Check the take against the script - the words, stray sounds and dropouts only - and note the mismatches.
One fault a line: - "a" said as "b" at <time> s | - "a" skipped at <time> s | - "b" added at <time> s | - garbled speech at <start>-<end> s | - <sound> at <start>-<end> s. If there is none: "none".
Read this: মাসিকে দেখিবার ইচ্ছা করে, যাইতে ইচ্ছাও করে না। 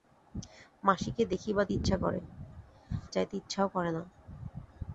none